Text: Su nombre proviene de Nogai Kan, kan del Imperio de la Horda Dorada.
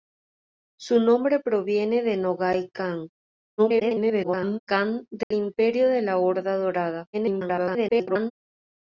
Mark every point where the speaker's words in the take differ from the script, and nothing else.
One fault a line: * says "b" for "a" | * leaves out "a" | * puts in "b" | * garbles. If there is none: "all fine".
* garbles
* garbles